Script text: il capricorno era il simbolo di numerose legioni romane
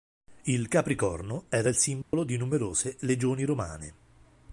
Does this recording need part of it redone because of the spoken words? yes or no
no